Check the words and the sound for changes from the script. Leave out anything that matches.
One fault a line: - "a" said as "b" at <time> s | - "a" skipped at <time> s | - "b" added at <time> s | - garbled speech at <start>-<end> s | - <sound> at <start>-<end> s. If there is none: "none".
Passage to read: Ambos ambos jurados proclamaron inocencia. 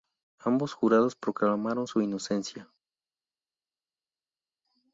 - "ambos" skipped at 0.7 s
- "su" added at 1.9 s